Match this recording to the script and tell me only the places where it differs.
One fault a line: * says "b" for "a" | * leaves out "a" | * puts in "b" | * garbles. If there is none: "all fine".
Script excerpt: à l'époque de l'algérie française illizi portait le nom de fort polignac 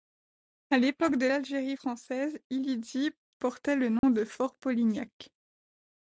all fine